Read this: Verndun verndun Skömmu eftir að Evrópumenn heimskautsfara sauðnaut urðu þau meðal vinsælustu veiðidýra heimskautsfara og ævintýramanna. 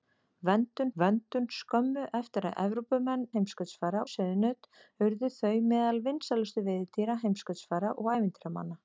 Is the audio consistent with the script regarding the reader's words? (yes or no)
yes